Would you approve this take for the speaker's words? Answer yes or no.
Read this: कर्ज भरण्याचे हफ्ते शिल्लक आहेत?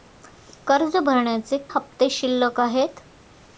yes